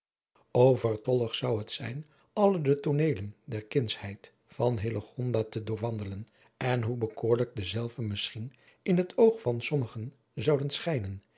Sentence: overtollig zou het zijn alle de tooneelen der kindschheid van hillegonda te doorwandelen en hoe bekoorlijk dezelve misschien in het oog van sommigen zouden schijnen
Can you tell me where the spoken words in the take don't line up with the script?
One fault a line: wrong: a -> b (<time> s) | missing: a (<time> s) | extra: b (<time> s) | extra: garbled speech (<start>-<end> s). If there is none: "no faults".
no faults